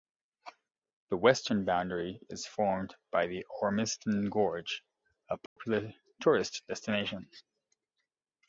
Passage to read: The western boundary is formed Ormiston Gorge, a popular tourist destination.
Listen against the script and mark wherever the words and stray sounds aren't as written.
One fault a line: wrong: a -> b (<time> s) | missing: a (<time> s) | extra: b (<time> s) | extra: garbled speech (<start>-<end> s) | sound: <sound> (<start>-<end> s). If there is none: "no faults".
extra: by the (3.1 s)
sound: dropout (5.5-5.6 s)